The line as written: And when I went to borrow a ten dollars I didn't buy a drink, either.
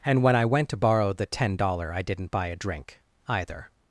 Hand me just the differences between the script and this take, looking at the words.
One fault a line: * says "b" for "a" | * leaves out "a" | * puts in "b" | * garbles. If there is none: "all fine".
* says "the" for "a"